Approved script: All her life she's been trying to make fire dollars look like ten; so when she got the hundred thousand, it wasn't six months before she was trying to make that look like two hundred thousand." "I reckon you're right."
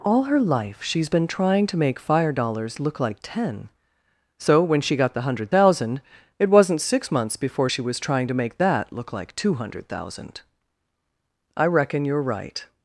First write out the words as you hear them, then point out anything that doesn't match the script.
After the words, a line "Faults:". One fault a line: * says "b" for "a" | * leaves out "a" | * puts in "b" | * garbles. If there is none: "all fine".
All her life she's been trying to make fire dollars look like ten; so when she got the hundred thousand, it wasn't six months before she was trying to make that look like two hundred thousand." "I reckon you're right."
Faults:
all fine